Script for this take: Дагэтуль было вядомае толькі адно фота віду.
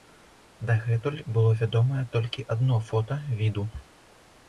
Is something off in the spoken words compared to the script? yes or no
no